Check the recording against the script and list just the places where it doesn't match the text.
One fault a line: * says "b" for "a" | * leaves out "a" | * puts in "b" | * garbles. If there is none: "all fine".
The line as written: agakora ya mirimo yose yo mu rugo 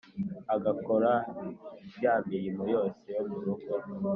all fine